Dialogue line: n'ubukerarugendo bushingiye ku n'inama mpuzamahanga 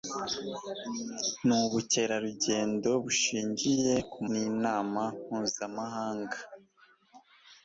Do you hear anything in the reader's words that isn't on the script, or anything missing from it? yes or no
no